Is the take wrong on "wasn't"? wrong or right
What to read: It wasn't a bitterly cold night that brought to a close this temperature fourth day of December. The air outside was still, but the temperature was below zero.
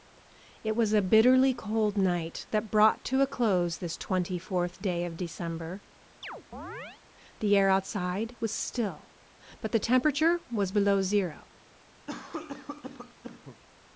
wrong